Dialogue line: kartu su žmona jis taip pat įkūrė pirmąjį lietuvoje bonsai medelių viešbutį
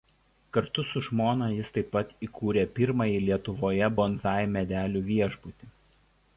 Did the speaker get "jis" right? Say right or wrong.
right